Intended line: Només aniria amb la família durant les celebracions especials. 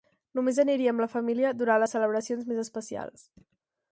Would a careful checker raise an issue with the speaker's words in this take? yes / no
yes